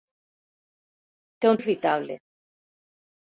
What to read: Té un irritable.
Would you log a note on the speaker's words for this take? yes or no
no